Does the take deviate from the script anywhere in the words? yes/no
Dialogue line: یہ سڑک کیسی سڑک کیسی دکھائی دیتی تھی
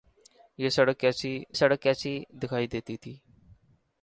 no